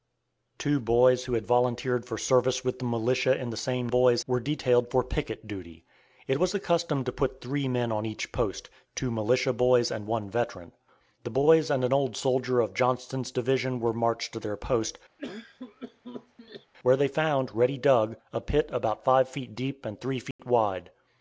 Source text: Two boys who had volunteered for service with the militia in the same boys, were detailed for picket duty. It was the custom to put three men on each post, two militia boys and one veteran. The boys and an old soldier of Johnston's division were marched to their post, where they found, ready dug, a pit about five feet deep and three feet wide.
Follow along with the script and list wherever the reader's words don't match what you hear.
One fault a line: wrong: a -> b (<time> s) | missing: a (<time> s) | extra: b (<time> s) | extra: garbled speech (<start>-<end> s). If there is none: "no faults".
no faults